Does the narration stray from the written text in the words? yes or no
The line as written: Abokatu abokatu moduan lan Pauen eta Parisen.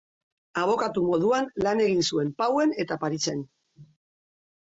yes